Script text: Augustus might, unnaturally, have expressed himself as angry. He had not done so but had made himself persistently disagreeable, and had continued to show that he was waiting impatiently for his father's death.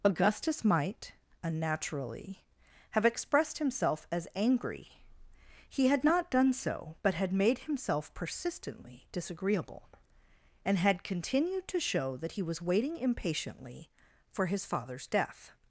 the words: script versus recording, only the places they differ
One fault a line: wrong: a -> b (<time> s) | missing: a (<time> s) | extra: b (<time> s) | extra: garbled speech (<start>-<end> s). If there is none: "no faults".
no faults